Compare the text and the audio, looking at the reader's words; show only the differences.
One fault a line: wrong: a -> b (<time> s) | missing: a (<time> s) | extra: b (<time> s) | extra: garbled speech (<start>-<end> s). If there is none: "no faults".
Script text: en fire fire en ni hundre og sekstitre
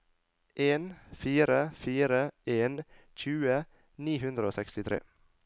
extra: tjue (3.1 s)